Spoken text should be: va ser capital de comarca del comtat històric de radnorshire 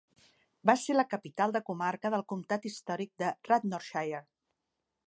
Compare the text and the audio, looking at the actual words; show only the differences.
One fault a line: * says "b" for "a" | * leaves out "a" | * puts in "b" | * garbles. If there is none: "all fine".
* puts in "la"